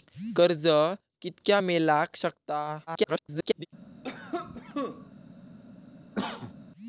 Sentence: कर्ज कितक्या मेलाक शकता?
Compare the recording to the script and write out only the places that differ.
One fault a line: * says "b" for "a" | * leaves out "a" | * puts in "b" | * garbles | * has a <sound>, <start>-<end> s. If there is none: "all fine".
* garbles
* has a cough, 4.0-5.1 s
* has a cough, 6.1-6.5 s